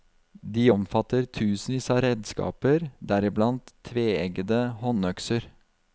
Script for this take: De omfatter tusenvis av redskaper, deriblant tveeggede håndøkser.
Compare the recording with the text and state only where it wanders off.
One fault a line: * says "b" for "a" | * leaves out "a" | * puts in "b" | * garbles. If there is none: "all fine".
all fine